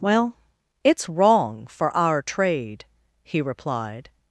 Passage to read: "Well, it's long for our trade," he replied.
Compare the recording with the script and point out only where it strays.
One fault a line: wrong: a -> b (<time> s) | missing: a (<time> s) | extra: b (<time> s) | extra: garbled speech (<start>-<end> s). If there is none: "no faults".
wrong: long -> wrong (1.1 s)